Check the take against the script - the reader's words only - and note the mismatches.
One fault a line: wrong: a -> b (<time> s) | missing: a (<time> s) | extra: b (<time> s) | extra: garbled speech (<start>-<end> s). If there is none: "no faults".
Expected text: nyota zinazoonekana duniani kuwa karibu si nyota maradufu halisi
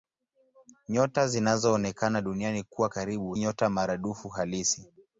missing: si (3.4 s)